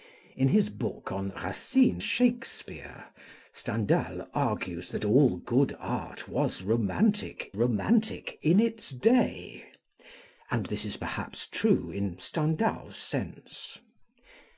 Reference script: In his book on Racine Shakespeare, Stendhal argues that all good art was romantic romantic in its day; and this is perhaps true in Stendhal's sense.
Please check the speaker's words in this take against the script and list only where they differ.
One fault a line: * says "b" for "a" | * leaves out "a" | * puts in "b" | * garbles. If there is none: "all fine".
all fine